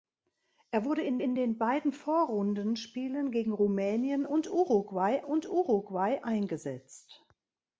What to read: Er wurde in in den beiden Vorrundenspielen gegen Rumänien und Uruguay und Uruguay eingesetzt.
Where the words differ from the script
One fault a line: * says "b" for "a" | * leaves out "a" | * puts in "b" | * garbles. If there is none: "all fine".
all fine